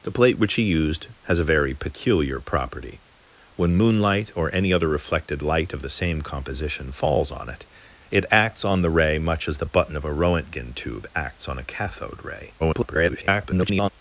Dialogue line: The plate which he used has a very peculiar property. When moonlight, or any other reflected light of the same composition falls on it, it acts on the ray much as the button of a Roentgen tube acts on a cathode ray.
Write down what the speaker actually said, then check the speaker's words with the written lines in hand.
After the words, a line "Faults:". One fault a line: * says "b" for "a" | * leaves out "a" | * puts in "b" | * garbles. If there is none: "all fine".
The plate which he used has a very peculiar property. When moonlight, or any other reflected light of the same composition falls on it, it acts on the ray much as the button of a Roentgen tube acts on a cathode ray. [garbled]
Faults:
* garbles